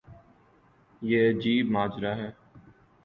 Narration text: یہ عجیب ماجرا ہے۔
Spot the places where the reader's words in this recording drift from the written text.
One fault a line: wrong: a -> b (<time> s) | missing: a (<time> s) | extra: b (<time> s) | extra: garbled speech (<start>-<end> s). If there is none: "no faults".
no faults